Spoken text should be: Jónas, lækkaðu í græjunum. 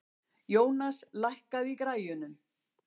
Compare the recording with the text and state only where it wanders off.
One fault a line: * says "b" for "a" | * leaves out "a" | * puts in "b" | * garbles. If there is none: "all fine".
all fine